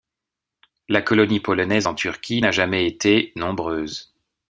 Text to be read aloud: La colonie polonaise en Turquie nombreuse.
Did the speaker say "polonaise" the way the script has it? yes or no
yes